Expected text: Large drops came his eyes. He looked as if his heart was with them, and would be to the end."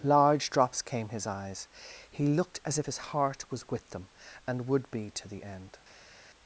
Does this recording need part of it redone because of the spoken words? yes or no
no